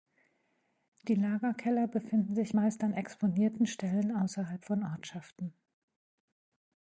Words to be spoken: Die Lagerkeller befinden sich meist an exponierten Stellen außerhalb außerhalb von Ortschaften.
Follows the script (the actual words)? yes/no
no